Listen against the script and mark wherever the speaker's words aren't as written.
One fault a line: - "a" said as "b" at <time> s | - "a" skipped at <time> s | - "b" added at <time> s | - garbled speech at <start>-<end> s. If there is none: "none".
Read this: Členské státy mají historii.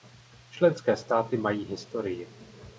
none